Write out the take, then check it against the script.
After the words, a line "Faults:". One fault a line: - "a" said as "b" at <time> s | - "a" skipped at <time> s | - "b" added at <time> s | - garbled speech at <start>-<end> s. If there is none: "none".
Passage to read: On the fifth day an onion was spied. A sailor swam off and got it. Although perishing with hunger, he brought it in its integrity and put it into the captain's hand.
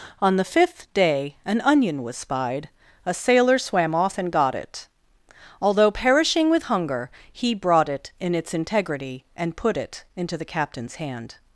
On the fifth day an onion was spied. A sailor swam off and got it. Although perishing with hunger, he brought it in its integrity and put it into the captain's hand.
Faults:
none